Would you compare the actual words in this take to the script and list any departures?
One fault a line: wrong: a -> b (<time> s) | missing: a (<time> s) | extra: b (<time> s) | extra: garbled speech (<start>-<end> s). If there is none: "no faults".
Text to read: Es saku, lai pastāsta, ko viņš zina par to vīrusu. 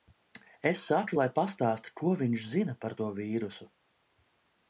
no faults